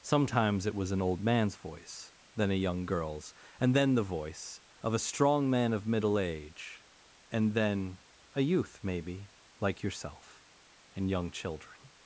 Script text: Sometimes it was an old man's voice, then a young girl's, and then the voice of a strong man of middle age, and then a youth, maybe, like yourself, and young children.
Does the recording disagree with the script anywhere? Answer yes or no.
no